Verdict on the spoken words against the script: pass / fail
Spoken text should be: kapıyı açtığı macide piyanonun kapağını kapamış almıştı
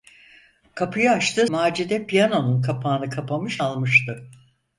pass